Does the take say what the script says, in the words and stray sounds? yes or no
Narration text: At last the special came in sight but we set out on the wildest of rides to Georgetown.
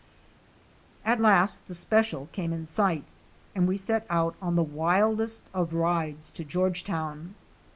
no